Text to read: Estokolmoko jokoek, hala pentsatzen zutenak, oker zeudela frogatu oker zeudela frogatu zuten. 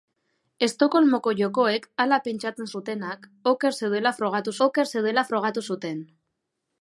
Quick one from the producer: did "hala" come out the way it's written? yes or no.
yes